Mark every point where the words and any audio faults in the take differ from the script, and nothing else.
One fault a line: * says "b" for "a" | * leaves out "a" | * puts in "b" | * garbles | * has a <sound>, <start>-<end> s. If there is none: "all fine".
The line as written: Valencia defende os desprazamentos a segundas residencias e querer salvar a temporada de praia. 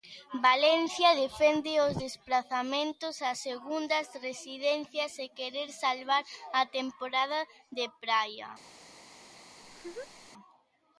* has a laugh, 9.6-10.3 s